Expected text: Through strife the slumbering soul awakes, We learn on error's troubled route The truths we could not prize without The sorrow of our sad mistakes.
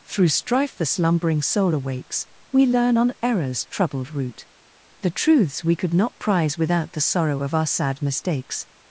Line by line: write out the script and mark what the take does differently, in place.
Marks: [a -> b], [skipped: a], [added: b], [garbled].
Through strife the slumbering soul awakes, We learn on error's troubled route The truths we could not prize without The sorrow of our sad mistakes.